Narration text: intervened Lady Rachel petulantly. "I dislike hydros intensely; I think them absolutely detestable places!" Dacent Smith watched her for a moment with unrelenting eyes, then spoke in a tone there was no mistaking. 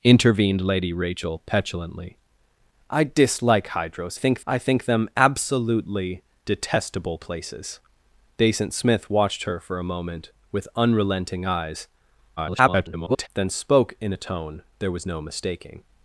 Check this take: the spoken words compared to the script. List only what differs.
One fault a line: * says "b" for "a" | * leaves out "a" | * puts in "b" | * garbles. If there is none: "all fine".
* says "think" for "intensely"
* garbles